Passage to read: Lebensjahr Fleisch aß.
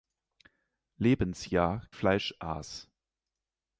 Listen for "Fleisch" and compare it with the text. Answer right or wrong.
right